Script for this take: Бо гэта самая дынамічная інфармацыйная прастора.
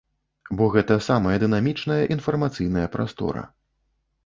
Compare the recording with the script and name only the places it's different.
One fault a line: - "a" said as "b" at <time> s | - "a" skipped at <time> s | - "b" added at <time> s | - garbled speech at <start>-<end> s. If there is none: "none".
none